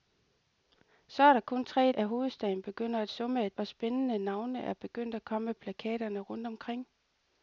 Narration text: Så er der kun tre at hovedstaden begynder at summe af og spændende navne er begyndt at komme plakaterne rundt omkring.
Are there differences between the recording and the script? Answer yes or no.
no